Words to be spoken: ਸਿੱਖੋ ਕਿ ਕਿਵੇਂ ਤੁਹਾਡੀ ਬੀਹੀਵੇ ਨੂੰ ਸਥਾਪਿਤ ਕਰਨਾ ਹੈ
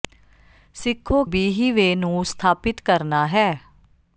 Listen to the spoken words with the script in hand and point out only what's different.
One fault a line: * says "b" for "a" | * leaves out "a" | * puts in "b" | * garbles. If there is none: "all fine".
* leaves out "ਕਿ ਕਿਵੇਂ ਤੁਹਾਡੀ"